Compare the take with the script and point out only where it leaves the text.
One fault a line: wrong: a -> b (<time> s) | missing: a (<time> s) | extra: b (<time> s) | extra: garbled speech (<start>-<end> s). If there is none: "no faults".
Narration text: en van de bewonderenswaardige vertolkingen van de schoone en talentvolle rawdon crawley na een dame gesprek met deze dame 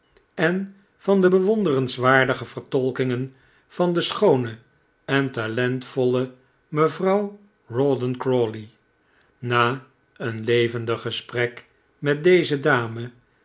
extra: mevrouw (6.7 s)
wrong: dame -> levendig (10.4 s)